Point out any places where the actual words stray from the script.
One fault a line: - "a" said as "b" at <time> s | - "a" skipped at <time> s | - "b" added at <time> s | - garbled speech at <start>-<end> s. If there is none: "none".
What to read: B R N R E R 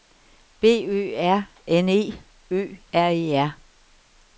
- "Ø" added at 0.9 s
- "E Ø" added at 1.9 s